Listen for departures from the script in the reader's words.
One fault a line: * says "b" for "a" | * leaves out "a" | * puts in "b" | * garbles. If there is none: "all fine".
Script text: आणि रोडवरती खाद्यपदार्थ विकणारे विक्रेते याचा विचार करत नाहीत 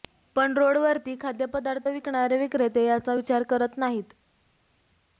* says "पण" for "आणि"